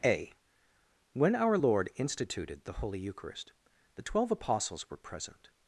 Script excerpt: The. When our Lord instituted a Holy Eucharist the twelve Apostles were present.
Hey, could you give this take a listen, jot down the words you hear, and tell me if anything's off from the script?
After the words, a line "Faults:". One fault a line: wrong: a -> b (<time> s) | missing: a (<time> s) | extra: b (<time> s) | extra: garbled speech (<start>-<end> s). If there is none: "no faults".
A. When our Lord instituted the Holy Eucharist the twelve Apostles were present.
Faults:
wrong: The -> A (0.0 s)
wrong: a -> the (2.6 s)